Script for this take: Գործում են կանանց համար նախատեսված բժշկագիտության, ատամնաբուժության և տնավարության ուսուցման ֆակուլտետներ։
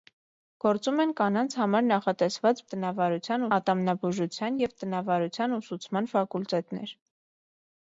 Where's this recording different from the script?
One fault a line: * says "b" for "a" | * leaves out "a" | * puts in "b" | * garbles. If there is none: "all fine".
* says "տնավարության" for "բժշկագիտության"